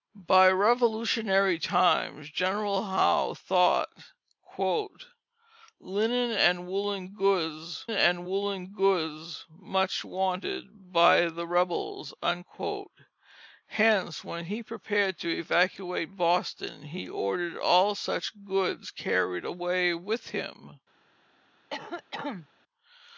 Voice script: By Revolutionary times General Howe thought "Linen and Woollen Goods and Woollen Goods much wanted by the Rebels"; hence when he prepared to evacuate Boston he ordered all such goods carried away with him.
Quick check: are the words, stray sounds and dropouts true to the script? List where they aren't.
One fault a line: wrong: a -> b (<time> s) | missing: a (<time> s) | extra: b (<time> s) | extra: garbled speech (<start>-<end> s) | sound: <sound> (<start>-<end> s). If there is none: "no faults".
sound: cough (21.7-22.5 s)